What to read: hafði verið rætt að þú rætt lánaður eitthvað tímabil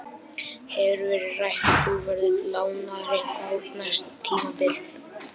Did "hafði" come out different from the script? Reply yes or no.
yes